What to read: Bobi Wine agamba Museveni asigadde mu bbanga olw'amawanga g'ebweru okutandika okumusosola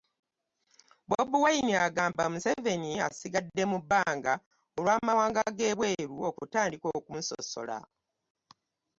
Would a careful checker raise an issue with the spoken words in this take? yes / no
no